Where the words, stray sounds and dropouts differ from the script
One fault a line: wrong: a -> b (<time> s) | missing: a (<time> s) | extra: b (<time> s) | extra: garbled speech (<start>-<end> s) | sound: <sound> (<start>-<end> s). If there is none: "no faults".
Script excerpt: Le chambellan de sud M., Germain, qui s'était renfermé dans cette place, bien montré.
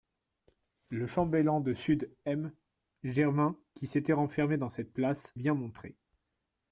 no faults